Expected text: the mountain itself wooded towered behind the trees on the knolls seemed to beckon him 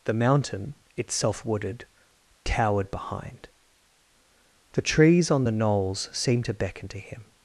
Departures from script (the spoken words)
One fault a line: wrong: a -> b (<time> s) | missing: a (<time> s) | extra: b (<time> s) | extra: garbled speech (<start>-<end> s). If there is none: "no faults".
extra: to (6.9 s)